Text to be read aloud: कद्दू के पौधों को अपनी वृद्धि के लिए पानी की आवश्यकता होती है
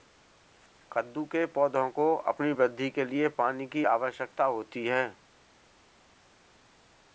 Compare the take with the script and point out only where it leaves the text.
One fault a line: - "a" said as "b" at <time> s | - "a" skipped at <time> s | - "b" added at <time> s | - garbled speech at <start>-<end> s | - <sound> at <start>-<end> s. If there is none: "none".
none